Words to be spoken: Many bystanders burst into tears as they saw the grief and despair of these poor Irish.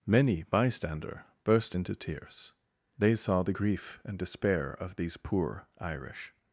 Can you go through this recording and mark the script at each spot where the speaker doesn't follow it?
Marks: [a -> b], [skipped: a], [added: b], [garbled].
Many [bystanders -> bystander] burst into tears [skipped: as] they saw the grief and despair of these poor Irish.